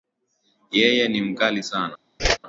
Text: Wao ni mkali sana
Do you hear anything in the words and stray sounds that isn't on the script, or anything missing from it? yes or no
yes